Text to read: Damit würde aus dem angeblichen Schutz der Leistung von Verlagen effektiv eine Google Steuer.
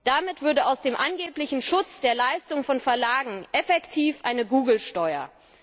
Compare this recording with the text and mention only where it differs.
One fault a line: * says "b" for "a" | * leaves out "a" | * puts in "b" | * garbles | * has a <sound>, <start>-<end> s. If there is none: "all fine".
all fine